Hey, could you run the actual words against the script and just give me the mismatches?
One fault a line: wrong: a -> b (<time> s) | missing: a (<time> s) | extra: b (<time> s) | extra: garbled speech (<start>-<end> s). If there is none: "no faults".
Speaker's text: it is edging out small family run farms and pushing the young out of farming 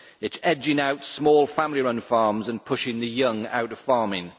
no faults